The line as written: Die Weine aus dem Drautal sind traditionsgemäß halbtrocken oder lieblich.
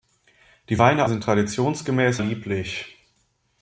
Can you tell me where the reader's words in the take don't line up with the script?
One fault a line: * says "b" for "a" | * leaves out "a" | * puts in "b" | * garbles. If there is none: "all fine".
* leaves out "aus dem Drautal"
* leaves out "halbtrocken oder"